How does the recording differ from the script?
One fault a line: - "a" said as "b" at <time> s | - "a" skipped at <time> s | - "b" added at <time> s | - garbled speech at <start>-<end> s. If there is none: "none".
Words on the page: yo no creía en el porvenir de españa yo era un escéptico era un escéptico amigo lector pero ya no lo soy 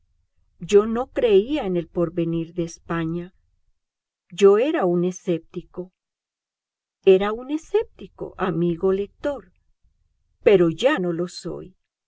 none